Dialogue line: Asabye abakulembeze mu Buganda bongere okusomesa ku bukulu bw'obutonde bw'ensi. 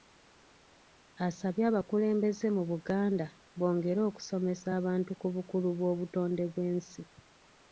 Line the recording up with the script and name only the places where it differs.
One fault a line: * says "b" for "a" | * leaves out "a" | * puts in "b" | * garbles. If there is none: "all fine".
* puts in "abantu"